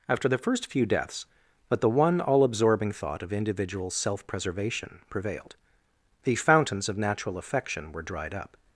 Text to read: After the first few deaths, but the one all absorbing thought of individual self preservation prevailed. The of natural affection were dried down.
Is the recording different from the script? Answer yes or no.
yes